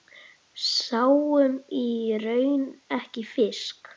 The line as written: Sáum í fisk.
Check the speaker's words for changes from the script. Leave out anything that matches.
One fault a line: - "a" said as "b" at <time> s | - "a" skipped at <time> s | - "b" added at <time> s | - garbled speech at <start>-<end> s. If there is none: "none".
- "raun ekki" added at 2.2 s